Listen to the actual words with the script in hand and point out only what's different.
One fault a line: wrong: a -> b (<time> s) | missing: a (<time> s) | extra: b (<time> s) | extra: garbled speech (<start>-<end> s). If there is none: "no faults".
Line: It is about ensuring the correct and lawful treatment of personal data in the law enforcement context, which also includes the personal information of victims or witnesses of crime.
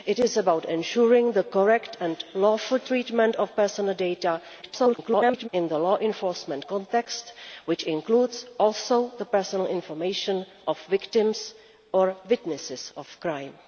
extra: garbled speech (4.6-5.5 s)